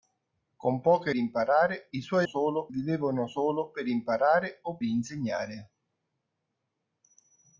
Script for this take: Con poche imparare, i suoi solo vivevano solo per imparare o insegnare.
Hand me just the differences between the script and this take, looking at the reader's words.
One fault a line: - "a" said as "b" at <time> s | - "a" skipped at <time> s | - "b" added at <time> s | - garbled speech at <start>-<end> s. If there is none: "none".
none